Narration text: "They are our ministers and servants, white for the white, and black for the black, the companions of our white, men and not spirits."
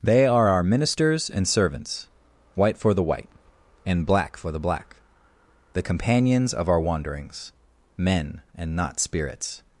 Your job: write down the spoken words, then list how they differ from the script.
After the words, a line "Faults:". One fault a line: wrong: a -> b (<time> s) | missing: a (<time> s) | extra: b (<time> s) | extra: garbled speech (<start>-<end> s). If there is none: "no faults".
"They are our ministers and servants, white for the white, and black for the black, the companions of our wanderings, men and not spirits."
Faults:
wrong: white -> wanderings (6.8 s)